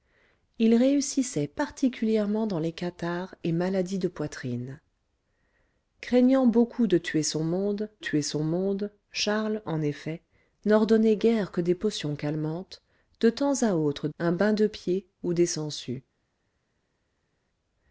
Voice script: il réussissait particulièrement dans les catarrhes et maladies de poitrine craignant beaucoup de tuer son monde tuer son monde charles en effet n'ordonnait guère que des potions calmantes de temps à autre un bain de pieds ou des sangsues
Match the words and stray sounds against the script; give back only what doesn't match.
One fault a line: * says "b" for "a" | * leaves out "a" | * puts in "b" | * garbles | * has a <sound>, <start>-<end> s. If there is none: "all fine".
all fine